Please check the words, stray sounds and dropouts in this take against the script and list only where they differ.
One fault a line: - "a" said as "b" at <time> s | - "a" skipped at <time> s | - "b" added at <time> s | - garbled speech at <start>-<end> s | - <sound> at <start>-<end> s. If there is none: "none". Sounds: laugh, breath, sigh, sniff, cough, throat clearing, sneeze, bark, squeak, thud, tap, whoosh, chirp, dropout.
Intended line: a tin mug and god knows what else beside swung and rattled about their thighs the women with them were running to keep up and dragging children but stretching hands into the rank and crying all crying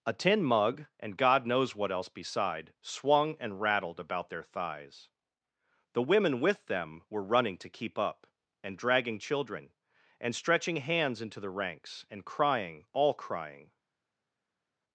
- "but" said as "and" at 10.2 s
- "rank" said as "ranks" at 11.5 s